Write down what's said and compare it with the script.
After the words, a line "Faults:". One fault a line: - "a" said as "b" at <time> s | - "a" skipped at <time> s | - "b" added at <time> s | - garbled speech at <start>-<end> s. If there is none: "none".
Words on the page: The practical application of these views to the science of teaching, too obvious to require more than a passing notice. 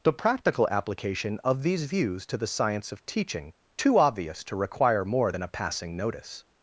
The practical application of these views to the science of teaching, too obvious to require more than a passing notice.
Faults:
none